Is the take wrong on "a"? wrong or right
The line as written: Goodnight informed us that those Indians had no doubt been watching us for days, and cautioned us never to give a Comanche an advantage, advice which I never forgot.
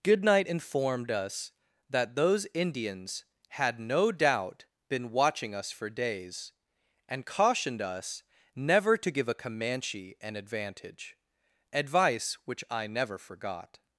right